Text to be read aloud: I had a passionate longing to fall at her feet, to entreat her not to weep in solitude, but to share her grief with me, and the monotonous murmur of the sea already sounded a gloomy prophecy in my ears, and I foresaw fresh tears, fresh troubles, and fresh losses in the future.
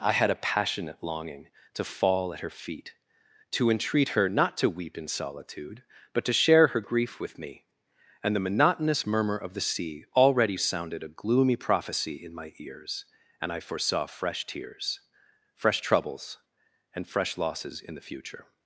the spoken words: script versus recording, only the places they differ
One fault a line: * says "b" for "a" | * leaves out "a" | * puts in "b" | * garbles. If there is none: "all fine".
all fine